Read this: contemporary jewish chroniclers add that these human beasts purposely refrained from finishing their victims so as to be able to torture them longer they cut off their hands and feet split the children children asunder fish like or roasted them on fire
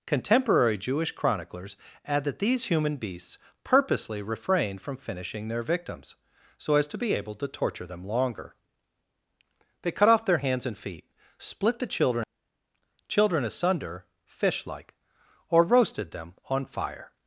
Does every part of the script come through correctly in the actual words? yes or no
yes